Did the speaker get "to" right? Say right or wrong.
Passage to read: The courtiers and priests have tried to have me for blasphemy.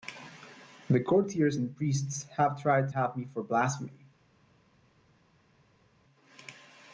wrong